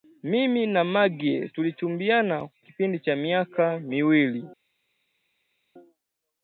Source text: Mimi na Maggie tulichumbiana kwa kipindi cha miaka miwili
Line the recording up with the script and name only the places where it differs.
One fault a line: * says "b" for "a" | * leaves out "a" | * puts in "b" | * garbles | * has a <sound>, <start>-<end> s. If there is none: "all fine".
* leaves out "kwa"